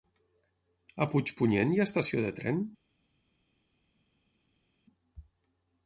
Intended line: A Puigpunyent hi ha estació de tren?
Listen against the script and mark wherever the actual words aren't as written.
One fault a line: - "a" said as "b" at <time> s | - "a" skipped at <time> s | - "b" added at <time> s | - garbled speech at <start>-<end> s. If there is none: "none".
none